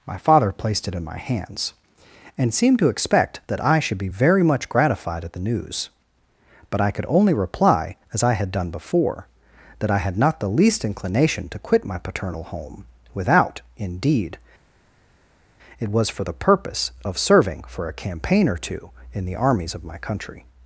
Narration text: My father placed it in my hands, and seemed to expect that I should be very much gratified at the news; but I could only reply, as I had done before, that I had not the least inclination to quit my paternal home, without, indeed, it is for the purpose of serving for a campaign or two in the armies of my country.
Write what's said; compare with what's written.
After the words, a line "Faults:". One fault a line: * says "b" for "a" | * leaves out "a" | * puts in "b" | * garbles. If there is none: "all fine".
My father placed it in my hands, and seemed to expect that I should be very much gratified at the news; but I could only reply, as I had done before, that I had not the least inclination to quit my paternal home, without, indeed, it was for the purpose of serving for a campaign or two in the armies of my country.
Faults:
* says "was" for "is"